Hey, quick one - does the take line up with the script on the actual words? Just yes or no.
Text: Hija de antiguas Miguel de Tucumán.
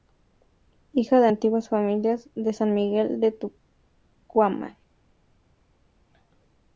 no